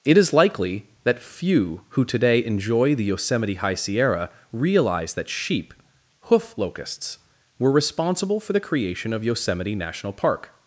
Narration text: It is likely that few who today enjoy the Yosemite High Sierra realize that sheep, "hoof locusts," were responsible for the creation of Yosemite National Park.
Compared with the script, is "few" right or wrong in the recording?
right